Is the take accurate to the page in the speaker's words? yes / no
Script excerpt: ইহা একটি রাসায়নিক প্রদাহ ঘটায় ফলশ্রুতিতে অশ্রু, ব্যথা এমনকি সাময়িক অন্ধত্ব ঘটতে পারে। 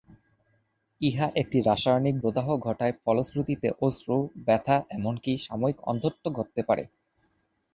yes